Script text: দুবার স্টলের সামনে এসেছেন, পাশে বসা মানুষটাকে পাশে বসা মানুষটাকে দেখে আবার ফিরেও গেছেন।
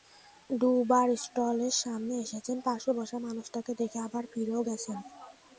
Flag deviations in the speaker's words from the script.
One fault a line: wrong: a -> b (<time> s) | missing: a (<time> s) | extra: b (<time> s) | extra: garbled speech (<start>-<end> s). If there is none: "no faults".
missing: পাশে বসা মানুষটাকে (3.7 s)